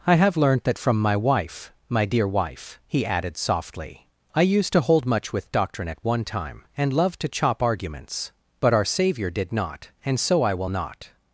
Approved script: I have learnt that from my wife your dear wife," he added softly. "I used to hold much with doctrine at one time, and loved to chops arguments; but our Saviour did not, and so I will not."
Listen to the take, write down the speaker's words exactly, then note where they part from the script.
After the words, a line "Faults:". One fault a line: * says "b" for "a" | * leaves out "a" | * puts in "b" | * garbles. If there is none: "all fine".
I have learnt that from my wife my dear wife," he added softly. "I used to hold much with doctrine at one time, and loved to chop arguments; but our Saviour did not, and so I will not."
Faults:
* says "my" for "your"
* says "chop" for "chops"